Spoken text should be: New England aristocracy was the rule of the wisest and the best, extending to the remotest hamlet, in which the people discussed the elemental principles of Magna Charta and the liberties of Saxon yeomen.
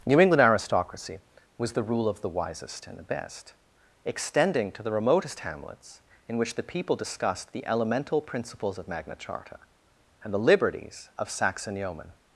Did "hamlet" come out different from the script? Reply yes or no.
yes